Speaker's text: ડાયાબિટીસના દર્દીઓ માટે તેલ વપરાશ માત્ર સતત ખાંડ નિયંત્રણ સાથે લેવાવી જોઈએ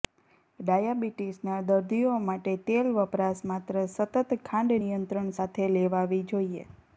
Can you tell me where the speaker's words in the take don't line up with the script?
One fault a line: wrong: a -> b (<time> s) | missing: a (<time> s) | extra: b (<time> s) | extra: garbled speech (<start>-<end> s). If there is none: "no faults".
no faults